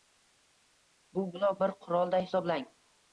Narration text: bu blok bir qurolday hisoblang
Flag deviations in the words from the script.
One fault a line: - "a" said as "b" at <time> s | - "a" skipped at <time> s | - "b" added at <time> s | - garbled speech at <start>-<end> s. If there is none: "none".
none